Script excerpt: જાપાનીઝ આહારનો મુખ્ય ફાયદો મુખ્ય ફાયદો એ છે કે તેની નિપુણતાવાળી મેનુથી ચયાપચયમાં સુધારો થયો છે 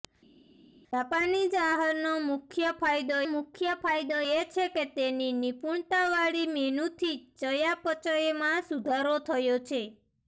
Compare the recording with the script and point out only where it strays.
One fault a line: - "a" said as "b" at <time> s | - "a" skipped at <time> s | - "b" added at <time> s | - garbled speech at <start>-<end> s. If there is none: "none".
none